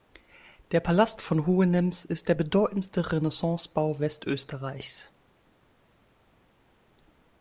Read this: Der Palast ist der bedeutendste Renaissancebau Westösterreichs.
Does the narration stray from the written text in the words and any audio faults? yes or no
yes